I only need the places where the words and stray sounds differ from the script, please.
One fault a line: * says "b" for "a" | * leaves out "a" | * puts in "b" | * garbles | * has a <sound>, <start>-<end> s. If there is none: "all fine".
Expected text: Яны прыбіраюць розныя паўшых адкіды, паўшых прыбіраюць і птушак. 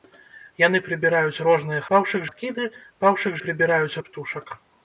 all fine